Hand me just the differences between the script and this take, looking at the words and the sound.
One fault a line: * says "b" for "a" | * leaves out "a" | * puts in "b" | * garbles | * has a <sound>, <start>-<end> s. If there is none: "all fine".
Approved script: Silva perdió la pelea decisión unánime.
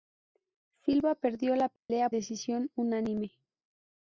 * has a dropout, 1.8-1.9 s